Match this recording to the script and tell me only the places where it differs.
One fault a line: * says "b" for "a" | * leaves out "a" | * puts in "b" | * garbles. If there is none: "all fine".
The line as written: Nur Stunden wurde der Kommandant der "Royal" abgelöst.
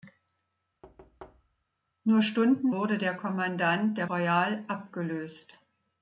all fine